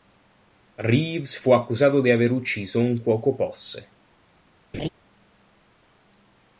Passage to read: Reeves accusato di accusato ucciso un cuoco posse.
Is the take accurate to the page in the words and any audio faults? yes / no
no